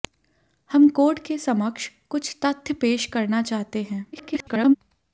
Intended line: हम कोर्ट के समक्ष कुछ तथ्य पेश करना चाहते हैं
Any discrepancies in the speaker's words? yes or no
yes